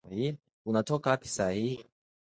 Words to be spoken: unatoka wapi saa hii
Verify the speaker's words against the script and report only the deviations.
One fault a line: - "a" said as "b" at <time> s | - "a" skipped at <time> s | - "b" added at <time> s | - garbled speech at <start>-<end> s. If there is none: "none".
none